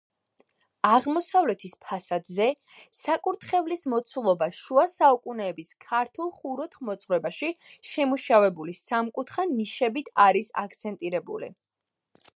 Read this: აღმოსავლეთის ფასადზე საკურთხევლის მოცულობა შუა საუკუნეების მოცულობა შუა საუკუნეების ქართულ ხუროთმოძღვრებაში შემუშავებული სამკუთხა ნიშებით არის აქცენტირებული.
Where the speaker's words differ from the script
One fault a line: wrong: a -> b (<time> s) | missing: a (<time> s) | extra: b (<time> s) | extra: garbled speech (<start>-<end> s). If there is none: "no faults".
missing: მოცულობა შუა საუკუნეების (5.7 s)